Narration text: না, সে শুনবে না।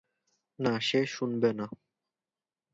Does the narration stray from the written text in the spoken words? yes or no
no